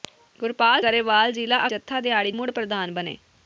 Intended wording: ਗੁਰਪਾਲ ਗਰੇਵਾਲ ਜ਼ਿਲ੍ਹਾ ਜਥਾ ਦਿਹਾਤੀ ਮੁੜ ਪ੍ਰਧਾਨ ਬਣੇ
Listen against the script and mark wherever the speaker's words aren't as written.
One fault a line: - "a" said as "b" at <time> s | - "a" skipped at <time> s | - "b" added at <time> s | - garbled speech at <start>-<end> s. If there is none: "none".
none